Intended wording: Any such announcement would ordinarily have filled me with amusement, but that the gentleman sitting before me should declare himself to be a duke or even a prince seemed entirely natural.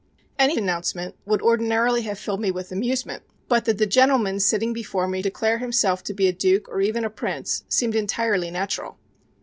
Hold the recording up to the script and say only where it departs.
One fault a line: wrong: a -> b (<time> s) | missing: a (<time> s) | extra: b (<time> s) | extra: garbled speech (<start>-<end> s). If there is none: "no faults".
missing: such (0.6 s)
missing: should (5.2 s)